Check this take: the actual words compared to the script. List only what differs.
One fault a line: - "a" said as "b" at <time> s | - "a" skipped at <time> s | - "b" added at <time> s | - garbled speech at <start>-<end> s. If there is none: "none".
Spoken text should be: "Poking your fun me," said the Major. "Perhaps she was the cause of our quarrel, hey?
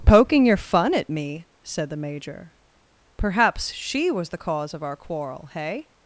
- "at" added at 0.9 s